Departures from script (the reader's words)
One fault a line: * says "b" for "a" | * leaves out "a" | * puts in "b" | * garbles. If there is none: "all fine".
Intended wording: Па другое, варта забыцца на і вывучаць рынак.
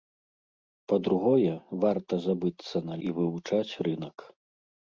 all fine